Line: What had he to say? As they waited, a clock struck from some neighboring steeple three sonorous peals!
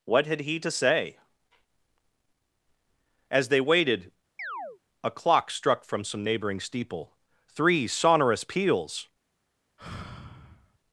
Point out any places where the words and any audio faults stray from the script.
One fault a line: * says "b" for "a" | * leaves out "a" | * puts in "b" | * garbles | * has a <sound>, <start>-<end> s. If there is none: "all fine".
* has a chirp, 4.4-4.8 s
* has a sigh, 9.8-10.8 s